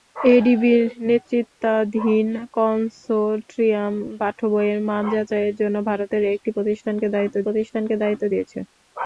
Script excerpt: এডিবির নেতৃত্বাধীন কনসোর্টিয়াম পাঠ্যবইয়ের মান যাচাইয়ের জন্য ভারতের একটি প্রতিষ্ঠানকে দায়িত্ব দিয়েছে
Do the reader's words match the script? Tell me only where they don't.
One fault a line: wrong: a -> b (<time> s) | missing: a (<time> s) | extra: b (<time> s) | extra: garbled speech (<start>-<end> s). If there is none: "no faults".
extra: প্রতিষ্ঠানকে দায়িত্ব (7.4 s)